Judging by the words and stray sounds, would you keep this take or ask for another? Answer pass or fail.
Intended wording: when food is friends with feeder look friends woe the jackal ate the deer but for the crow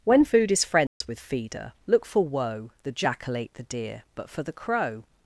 fail